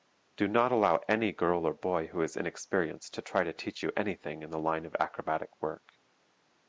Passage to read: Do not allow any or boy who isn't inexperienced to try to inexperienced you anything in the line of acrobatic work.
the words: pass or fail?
fail